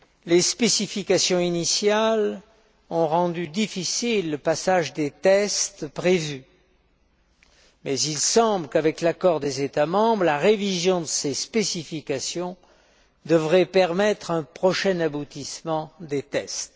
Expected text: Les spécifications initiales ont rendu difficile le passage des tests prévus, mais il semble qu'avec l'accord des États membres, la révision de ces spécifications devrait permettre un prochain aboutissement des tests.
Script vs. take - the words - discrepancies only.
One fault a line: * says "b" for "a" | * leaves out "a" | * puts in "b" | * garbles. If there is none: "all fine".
all fine